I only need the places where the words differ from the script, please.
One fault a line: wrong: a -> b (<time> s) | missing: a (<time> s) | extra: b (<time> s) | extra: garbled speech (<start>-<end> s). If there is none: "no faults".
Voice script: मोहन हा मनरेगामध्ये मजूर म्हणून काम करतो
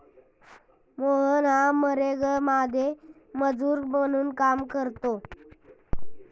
no faults